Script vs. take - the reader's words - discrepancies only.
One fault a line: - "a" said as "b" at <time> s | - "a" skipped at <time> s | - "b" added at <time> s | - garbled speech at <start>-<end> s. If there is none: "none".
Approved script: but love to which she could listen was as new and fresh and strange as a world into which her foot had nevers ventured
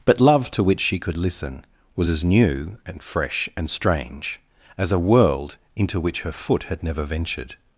- "nevers" said as "never" at 6.8 s